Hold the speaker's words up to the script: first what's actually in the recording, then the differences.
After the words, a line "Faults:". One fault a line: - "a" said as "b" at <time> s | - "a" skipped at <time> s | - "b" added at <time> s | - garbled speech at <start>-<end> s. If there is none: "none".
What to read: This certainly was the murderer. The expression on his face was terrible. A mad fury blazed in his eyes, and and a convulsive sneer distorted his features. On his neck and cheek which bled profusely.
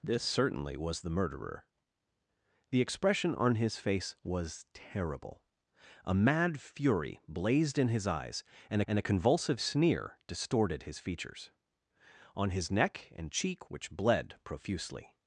This certainly was the murderer. The expression on his face was terrible. A mad fury blazed in his eyes, and and a convulsive sneer distorted his features. On his neck and cheek which bled profusely.
Faults:
none